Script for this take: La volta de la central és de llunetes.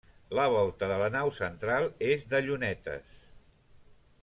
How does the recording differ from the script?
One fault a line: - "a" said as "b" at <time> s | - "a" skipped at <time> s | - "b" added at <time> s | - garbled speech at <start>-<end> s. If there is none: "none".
- "nau" added at 1.1 s